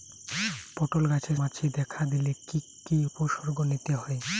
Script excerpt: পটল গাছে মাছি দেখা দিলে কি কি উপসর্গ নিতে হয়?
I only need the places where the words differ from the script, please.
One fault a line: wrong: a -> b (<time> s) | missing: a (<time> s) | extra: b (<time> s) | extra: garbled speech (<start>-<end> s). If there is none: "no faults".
no faults